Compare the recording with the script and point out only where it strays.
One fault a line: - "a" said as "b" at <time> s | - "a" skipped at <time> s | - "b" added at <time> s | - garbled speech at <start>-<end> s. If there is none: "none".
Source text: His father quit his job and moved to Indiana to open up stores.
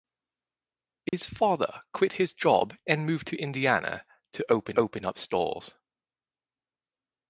- "open" added at 4.8 s